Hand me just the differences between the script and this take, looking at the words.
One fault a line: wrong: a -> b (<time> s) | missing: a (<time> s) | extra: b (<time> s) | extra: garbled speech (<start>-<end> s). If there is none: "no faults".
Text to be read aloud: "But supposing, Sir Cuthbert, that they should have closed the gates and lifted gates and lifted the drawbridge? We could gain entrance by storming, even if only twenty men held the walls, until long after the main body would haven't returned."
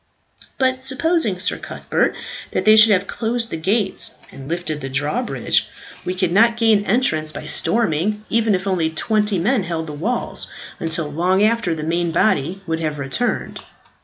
missing: gates and lifted (4.8 s)
extra: not (6.3 s)
wrong: haven't -> have (12.8 s)